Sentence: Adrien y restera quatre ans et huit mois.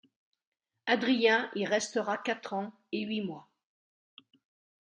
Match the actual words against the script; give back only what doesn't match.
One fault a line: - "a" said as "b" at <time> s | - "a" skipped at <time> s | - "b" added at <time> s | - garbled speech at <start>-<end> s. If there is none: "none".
none